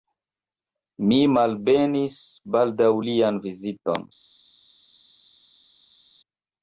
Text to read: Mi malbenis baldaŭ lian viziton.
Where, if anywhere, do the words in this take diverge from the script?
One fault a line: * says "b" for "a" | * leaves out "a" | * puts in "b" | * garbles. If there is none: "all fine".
all fine